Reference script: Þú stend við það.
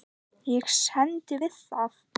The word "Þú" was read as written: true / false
false